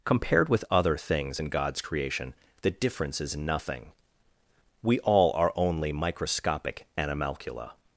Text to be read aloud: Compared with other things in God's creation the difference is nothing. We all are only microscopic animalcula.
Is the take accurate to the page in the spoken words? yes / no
yes